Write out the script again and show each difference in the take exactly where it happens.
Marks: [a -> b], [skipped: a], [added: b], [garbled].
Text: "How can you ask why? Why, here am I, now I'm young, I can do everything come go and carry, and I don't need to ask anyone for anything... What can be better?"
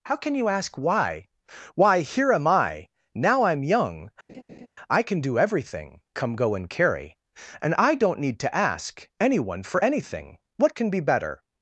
"How can you ask why? Why, here am I, now I'm young, I can do everything come go and carry, and I don't need to ask anyone for anything... What can be better?"